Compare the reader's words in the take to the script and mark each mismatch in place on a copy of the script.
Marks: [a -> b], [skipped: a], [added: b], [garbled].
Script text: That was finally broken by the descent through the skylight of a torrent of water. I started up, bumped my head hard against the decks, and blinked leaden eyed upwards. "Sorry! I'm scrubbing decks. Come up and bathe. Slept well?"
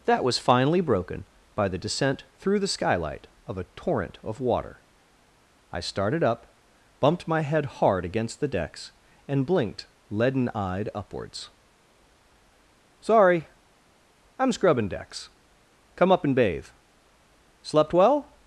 That was finally broken by the descent through the skylight of a torrent of water. I started up, bumped my head hard against the decks, and blinked leaden eyed upwards. "Sorry! I'm scrubbing decks. Come up and bathe. Slept well?"